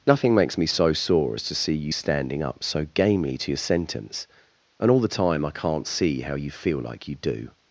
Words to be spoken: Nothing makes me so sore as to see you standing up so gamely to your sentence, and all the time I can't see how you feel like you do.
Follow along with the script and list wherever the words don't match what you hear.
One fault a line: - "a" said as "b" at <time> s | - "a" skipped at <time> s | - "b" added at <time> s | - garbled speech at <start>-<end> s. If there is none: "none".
none